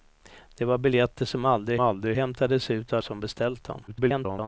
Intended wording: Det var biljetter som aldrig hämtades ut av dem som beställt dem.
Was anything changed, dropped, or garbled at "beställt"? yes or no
no